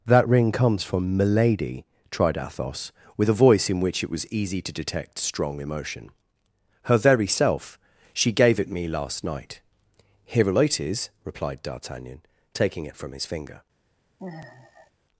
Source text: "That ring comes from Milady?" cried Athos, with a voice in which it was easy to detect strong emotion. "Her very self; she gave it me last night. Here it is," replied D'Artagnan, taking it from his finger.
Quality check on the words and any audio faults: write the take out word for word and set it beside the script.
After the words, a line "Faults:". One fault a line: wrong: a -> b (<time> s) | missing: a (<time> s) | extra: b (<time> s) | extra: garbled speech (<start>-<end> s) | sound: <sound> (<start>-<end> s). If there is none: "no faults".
"That ring comes from Milady?" tried Athos, with a voice in which it was easy to detect strong emotion. "Her very self; she gave it me last night. Here it is," replied D'Artagnan, taking it from his finger.
Faults:
wrong: cried -> tried (2.1 s)
sound: sigh (14.2-14.9 s)